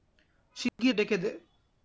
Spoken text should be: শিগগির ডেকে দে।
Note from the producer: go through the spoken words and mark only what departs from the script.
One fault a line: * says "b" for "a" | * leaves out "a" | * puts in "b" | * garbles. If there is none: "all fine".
all fine